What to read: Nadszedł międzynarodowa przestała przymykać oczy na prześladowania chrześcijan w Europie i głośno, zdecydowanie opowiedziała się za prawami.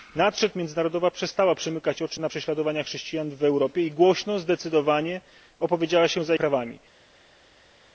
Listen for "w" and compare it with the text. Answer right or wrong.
right